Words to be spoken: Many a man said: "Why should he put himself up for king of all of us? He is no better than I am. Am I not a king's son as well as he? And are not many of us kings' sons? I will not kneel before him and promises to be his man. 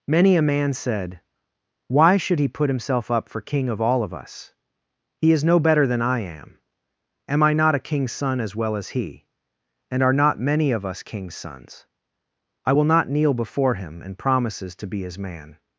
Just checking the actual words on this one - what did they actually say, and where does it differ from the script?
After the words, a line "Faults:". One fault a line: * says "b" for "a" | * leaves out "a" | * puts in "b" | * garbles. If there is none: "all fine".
Many a man said: "Why should he put himself up for king of all of us? He is no better than I am. Am I not a king's son as well as he? And are not many of us kings' sons? I will not kneel before him and promises to be his man.
Faults:
all fine